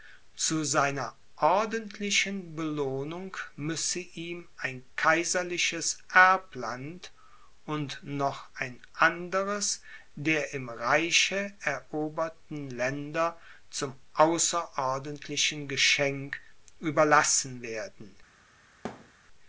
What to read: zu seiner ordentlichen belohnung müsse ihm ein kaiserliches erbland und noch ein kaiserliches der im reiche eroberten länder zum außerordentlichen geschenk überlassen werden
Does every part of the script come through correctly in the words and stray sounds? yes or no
no